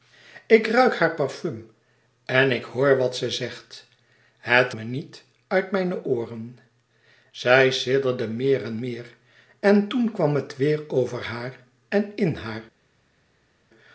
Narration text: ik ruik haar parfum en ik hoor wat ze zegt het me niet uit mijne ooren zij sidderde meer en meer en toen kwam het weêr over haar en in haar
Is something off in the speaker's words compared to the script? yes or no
no